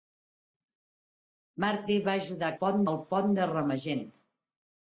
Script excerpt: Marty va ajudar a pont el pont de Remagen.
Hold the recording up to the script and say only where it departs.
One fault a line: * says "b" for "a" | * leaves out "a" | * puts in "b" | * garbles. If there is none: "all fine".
all fine